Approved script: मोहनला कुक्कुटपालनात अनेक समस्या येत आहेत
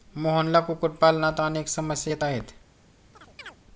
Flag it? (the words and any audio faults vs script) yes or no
yes